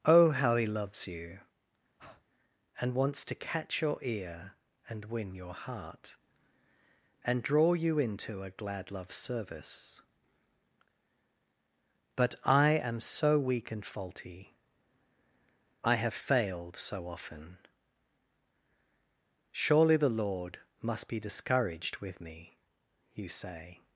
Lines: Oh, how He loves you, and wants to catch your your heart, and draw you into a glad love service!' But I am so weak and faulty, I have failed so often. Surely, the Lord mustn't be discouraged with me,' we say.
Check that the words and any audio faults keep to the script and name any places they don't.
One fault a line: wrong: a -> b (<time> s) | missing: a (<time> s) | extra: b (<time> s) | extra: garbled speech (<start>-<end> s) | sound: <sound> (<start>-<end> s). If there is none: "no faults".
sound: breath (2.0-2.2 s)
extra: ear and win (4.0 s)
wrong: mustn't -> must (20.8 s)
wrong: we -> you (23.1 s)